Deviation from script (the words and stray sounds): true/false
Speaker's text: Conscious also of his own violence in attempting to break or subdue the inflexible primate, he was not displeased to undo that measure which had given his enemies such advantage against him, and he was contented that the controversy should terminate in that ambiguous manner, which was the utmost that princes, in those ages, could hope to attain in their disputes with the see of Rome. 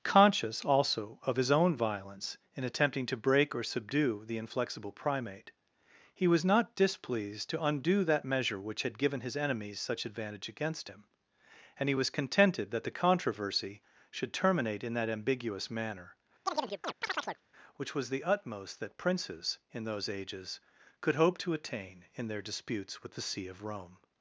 true